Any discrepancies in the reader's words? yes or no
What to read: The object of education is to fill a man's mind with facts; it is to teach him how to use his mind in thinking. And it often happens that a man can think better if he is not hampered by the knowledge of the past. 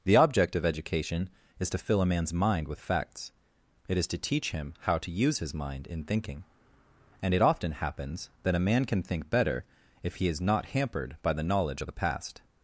no